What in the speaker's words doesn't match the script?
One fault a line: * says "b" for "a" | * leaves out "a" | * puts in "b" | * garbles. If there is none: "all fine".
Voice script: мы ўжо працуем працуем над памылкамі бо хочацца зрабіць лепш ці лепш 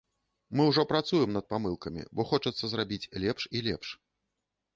* leaves out "працуем"
* says "і" for "ці"